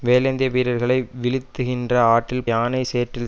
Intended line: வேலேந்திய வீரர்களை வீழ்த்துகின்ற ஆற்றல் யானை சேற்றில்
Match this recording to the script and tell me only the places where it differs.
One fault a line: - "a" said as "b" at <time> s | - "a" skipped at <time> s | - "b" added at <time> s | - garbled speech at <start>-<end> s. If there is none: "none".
none